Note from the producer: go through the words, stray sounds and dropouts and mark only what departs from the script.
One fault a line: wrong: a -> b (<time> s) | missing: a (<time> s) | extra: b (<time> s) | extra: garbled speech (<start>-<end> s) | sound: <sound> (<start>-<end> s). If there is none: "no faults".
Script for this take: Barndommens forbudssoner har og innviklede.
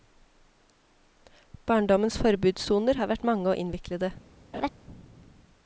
extra: vært mange (3.1 s)
sound: laugh (4.5-4.7 s)